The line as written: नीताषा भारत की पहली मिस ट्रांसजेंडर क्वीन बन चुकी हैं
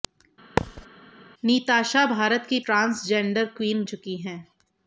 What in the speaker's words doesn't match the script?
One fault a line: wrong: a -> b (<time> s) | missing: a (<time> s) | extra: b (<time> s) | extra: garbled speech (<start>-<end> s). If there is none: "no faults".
missing: पहली मिस (2.6 s)
missing: बन (3.8 s)